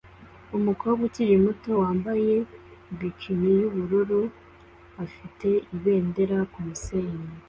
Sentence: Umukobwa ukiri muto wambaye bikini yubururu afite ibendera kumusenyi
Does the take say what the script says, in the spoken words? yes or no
yes